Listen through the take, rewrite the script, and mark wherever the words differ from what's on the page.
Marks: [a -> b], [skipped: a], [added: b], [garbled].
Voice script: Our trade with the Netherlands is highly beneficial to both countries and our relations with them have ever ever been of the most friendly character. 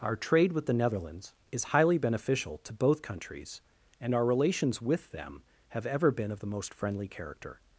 Our trade with the Netherlands is highly beneficial to both countries and our relations with them have ever [skipped: ever] been of the most friendly character.